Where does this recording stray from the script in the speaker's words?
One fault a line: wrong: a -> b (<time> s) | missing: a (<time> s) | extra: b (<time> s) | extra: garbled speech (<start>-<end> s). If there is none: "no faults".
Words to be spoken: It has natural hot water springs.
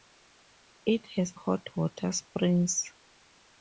missing: natural (1.4 s)